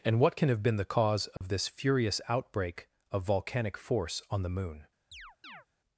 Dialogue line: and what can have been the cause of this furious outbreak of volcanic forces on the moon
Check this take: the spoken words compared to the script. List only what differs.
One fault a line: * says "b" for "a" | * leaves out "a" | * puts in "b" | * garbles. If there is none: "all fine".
* says "force" for "forces"